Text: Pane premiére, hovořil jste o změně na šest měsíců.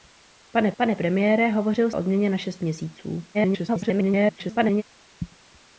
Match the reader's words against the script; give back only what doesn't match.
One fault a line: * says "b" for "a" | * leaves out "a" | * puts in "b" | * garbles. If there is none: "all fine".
* puts in "pane"
* leaves out "jste"
* garbles